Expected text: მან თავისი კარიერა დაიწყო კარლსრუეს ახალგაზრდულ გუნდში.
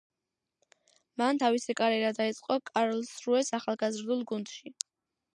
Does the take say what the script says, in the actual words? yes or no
yes